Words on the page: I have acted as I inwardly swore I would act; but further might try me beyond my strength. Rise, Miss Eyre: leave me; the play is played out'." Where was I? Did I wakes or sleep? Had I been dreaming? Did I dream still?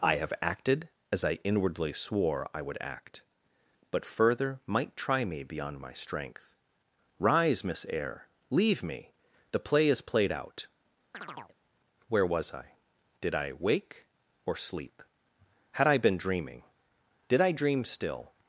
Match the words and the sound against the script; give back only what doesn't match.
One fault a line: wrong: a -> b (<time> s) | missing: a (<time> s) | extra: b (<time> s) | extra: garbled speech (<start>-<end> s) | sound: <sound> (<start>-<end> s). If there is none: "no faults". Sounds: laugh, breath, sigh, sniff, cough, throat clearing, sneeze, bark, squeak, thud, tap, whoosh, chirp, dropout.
sound: chirp (11.1-11.6 s)
wrong: wakes -> wake (13.5 s)